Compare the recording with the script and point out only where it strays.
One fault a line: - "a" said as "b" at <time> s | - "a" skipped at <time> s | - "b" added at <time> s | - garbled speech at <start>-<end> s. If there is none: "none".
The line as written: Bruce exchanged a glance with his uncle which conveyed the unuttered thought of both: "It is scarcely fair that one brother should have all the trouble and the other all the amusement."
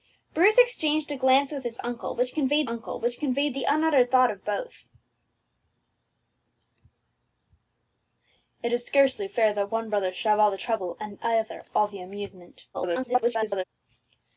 - "uncle which conveyed" added at 2.7 s
- garbled speech at 12.7-13.6 s